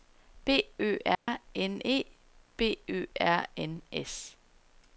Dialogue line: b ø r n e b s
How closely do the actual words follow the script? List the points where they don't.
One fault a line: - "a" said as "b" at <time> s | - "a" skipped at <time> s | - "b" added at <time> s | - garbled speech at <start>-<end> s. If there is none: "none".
- "ø r n" added at 2.9 s